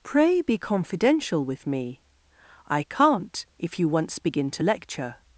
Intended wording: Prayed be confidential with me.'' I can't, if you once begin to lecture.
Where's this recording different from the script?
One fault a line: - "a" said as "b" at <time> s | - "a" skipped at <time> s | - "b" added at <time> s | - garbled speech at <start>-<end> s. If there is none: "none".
- "Prayed" said as "Pray" at 0.0 s